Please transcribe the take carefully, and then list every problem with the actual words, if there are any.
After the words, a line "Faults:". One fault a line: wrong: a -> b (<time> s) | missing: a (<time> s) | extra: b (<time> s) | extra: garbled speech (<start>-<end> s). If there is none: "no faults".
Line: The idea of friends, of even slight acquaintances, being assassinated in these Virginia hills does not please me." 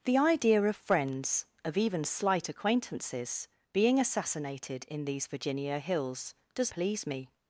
The idea of friends, of even slight acquaintances, being assassinated in these Virginia hills does please me."
Faults:
missing: not (6.7 s)